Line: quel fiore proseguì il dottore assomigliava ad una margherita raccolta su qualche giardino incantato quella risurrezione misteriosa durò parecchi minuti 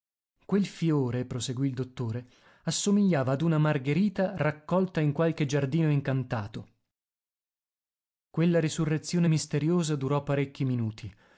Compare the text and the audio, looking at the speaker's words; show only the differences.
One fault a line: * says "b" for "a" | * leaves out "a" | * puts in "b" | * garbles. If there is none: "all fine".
* says "in" for "su"